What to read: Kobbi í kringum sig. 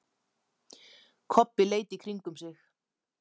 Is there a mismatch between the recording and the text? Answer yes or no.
yes